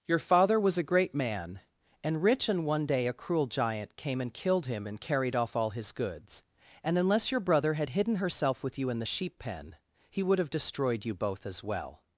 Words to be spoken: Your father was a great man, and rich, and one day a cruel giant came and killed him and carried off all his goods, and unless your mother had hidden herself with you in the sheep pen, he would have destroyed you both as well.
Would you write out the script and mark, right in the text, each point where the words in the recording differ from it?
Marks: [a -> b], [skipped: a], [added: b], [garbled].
Your father was a great man, and rich, and one day a cruel giant came and killed him and carried off all his goods, and unless your [mother -> brother] had hidden herself with you in the sheep pen, he would have destroyed you both as well.